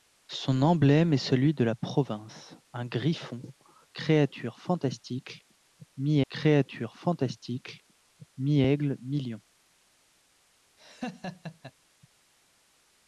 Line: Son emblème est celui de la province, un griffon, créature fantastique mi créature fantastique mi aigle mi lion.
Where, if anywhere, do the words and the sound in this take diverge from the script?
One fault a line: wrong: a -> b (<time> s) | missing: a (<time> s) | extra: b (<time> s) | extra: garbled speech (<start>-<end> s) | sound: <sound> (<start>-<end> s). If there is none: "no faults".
sound: laugh (10.8-11.7 s)